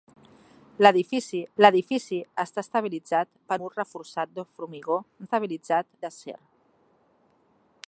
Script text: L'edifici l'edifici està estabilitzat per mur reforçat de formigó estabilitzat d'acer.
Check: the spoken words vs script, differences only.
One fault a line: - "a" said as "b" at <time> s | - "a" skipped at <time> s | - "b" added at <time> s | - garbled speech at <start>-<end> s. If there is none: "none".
none